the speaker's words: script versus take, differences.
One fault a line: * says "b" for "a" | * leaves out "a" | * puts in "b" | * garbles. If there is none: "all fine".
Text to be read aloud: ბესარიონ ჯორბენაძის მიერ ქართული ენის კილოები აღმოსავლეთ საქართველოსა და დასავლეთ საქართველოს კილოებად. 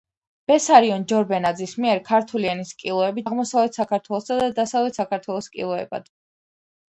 all fine